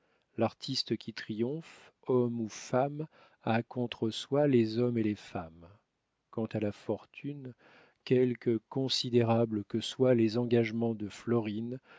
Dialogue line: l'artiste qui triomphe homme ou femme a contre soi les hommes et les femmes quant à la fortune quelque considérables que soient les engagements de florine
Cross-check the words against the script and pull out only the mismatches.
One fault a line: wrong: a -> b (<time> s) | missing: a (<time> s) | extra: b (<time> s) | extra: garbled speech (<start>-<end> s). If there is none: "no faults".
no faults